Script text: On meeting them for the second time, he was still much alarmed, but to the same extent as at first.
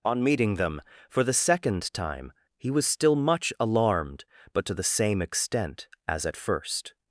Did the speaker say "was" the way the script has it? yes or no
yes